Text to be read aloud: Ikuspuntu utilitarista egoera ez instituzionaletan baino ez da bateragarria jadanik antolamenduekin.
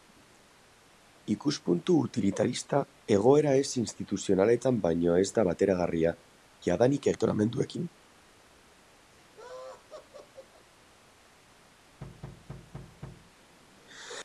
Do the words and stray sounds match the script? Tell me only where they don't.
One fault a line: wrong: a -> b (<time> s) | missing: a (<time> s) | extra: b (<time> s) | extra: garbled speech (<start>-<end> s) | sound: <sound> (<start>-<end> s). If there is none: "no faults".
sound: laugh (9.1-10.7 s)
sound: thud (12.0-13.3 s)